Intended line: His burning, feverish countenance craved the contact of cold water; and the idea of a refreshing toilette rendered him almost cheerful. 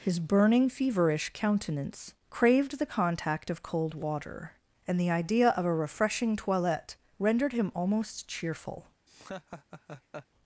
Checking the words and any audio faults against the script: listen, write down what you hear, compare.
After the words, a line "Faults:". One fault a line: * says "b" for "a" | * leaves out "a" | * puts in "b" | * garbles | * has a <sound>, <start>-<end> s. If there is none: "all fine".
His burning, feverish countenance craved the contact of cold water; and the idea of a refreshing toilette rendered him almost cheerful.
Faults:
* has a laugh, 9.1-10.3 s